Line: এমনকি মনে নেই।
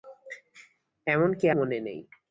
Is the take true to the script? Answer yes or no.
yes